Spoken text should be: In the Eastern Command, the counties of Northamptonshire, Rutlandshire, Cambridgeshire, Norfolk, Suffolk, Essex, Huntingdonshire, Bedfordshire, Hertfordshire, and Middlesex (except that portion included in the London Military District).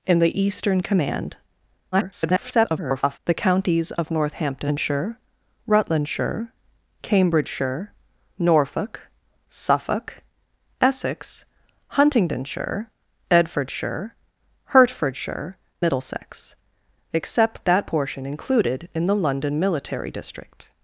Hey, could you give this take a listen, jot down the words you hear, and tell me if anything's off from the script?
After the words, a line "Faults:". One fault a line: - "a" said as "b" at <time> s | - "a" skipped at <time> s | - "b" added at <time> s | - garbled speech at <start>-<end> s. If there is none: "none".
In the Eastern Command, [garbled] the counties of Northamptonshire, Rutlandshire, Cambridgeshire, Norfolk, Suffolk, Essex, Huntingdonshire, Bedfordshire, Hertfordshire, Middlesex (except that portion included in the London Military District).
Faults:
- garbled speech at 1.9-3.2 s
- "and" skipped at 15.6 s